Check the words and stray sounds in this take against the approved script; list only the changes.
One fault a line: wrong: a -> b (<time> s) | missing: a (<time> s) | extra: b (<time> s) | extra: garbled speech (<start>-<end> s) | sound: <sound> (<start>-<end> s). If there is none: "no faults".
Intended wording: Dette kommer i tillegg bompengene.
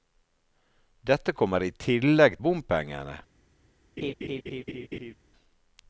sound: laugh (4.0-5.1 s)